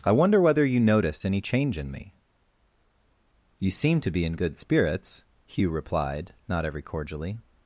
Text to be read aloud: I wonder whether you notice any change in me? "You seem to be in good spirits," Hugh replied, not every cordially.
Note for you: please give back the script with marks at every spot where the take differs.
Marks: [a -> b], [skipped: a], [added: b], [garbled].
I wonder whether you notice any change in me? "You seem to be in good spirits," Hugh replied, not every cordially.